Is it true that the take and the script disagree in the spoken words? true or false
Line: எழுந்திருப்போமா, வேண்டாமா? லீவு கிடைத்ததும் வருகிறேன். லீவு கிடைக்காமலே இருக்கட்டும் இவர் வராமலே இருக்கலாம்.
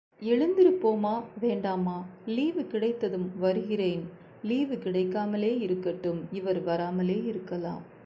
false